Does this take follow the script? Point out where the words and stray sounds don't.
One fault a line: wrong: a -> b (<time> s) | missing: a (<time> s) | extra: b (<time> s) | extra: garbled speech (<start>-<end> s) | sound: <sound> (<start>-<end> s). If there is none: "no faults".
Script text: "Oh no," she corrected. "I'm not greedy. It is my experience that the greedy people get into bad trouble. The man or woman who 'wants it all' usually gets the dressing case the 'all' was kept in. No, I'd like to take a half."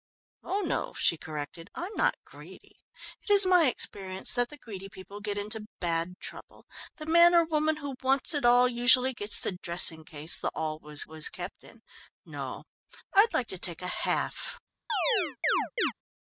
extra: was (11.0 s)
sound: chirp (14.9-15.9 s)